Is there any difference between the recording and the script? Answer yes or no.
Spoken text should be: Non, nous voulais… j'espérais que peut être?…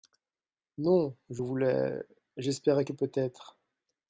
yes